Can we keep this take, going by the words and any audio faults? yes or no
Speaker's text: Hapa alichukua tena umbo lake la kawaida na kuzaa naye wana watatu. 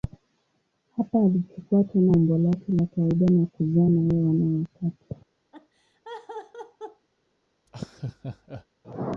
no